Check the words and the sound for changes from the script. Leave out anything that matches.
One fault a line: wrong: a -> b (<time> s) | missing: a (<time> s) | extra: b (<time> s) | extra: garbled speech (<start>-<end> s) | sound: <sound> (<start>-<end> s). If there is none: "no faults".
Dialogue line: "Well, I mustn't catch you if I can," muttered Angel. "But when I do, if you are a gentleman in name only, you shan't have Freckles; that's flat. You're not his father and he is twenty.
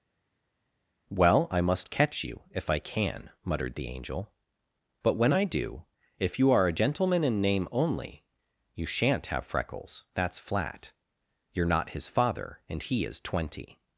wrong: mustn't -> must (1.6 s)
extra: the (3.8 s)